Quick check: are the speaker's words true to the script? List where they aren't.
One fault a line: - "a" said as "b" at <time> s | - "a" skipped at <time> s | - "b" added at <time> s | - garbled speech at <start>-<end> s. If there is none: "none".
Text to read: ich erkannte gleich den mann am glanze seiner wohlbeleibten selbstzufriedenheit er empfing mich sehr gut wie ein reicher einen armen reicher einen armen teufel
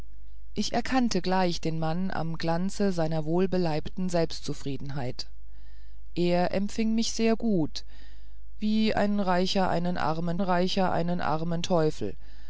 none